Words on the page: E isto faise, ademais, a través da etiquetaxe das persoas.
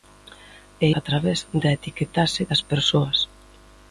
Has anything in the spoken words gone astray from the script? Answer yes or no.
yes